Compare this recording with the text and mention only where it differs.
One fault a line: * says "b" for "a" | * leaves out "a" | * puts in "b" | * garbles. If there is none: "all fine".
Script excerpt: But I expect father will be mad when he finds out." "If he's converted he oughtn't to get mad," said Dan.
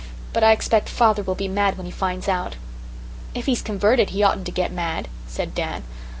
all fine